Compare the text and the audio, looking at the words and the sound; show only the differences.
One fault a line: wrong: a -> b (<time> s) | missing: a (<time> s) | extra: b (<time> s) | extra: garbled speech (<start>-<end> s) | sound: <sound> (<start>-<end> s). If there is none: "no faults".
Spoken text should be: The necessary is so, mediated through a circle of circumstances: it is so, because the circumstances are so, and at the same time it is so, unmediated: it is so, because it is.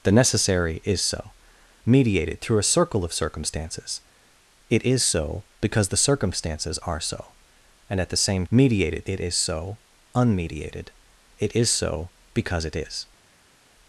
wrong: time -> mediated (8.5 s)